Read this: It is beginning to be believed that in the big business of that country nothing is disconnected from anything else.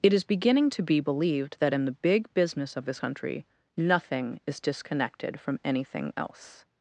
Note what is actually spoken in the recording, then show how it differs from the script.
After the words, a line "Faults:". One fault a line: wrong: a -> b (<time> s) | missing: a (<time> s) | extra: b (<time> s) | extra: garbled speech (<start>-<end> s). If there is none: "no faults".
It is beginning to be believed that in the big business of this country nothing is disconnected from anything else.
Faults:
wrong: that -> this (2.9 s)